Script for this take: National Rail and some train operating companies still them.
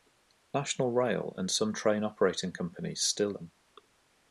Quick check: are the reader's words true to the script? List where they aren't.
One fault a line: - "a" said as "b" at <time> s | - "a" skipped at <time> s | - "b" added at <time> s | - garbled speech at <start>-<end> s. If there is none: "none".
none